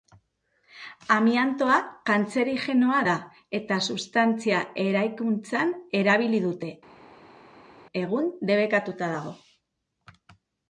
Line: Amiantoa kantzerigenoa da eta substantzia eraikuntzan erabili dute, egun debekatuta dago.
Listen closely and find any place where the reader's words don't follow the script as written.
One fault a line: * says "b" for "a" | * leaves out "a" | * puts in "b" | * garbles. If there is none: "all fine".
all fine